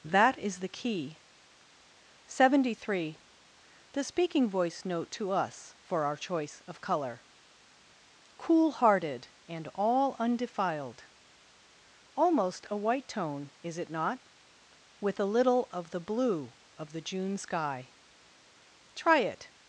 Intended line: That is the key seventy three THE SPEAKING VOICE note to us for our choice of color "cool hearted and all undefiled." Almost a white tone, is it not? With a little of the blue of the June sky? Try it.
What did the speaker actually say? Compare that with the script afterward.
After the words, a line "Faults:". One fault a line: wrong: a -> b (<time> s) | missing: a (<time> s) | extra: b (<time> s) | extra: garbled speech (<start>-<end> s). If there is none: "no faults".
That is the key seventy three THE SPEAKING VOICE note to us for our choice of color "cool hearted and all undefiled." Almost a white tone, is it not? With a little of the blue of the June sky? Try it.
Faults:
no faults